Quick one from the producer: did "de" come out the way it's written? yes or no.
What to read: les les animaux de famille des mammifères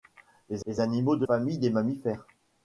yes